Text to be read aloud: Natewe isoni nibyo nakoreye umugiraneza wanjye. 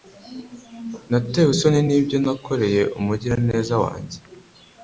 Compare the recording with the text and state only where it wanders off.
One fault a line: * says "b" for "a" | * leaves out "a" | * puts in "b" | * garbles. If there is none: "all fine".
all fine